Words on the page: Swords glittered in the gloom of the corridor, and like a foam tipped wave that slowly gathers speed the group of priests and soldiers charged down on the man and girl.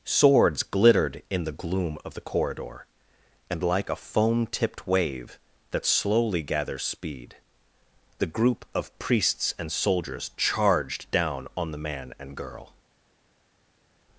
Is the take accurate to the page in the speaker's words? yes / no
yes